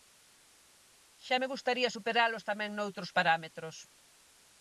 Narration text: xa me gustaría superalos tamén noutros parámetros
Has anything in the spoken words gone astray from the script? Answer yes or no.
no